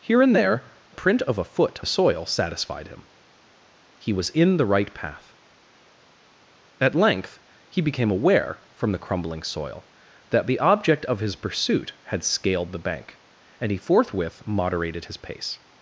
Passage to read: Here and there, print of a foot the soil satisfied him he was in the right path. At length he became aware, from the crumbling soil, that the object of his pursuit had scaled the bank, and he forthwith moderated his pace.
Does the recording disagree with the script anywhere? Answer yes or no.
no